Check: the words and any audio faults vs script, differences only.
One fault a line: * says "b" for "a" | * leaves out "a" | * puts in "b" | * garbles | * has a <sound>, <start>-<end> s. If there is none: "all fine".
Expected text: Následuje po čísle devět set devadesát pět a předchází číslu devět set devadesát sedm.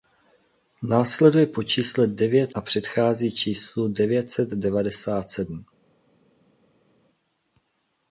* leaves out "set devadesát pět"